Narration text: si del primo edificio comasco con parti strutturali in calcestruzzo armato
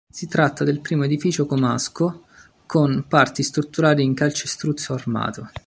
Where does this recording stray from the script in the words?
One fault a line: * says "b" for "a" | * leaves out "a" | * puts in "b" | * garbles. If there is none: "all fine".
* puts in "tratta"